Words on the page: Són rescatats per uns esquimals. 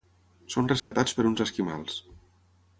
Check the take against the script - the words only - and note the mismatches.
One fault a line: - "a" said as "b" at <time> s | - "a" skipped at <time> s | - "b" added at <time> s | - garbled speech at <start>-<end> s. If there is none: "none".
none